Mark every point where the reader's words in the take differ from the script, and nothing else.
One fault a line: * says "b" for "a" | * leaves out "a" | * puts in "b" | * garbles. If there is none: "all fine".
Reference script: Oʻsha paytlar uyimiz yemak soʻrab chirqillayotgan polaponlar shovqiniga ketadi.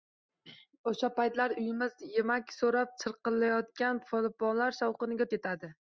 all fine